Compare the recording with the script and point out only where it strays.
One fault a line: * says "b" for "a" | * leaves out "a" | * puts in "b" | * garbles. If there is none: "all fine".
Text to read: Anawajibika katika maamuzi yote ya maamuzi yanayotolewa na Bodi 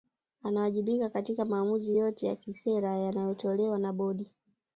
* says "kisera" for "maamuzi"